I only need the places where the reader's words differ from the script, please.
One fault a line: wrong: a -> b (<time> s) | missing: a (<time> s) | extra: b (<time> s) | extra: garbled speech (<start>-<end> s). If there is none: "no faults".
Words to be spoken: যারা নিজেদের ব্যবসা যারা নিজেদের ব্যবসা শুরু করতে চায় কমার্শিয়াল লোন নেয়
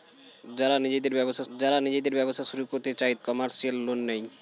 no faults